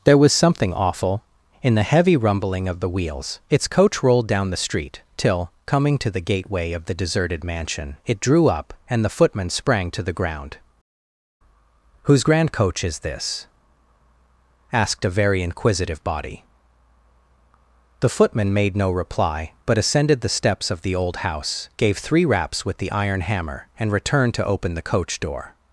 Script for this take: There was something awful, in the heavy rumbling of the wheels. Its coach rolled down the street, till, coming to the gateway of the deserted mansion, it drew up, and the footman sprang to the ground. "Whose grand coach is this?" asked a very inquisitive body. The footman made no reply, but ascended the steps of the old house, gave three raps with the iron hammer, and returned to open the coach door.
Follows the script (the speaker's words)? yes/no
yes